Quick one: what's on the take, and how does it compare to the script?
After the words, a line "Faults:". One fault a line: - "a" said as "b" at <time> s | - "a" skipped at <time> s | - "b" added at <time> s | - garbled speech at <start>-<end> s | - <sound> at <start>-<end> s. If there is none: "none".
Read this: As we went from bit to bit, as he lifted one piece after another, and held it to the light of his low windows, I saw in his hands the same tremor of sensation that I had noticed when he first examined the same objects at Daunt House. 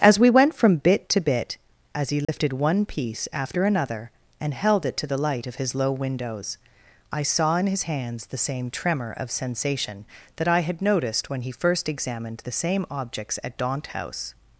As we went from bit to bit, as he lifted one piece after another, and held it to the light of his low windows, I saw in his hands the same tremor of sensation that I had noticed when he first examined the same objects at Daunt House.
Faults:
- dropout at 2.2-2.3 s